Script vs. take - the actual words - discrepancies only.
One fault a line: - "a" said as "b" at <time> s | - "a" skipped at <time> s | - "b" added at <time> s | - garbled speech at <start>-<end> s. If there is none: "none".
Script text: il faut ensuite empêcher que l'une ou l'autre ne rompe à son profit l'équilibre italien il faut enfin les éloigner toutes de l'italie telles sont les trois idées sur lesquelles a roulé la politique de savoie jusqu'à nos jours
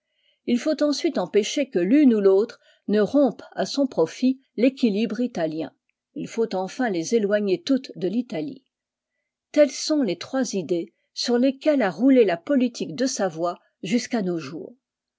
none